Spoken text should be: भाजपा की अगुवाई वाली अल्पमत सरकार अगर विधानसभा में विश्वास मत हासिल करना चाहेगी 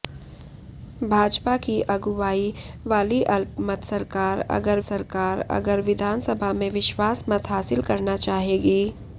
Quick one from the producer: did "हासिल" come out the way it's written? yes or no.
yes